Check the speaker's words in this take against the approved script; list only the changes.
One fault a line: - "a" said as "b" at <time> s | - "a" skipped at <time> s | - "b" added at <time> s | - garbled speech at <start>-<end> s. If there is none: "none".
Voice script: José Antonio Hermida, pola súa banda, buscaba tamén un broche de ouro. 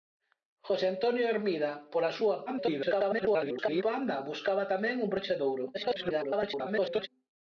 - garbled speech at 2.5-3.8 s
- garbled speech at 5.7-7.1 s